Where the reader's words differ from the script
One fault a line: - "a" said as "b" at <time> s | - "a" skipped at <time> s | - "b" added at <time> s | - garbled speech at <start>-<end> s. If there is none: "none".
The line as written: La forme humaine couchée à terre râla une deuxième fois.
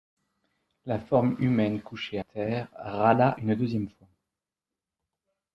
- "à" skipped at 2.2 s